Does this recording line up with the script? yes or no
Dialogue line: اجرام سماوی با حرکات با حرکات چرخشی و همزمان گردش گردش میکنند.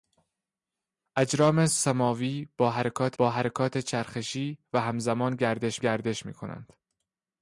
yes